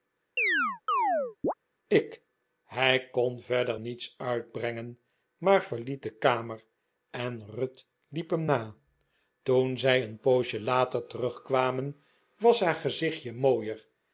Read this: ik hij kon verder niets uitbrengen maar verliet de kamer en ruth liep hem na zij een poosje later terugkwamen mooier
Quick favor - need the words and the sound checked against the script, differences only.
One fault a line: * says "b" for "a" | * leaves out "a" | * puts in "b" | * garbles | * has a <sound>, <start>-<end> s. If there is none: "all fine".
* has a chirp, 0.4-1.5 s
* puts in "toen"
* puts in "was haar gezichtje"